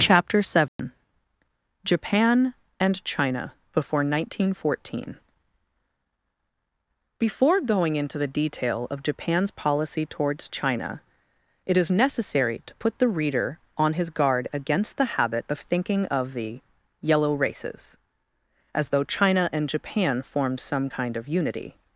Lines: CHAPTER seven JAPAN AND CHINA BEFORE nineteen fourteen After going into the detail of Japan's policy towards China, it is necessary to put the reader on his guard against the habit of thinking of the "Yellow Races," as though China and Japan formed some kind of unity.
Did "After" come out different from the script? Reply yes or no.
yes